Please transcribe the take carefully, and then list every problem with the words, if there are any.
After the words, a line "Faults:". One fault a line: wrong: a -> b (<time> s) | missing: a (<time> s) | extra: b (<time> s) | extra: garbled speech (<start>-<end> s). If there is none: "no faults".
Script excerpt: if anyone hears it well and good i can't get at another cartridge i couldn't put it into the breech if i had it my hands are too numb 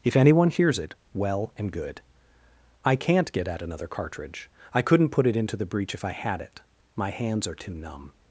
if anyone hears it well and good i can't get at another cartridge i couldn't put it into the breech if i had it my hands are too numb
Faults:
no faults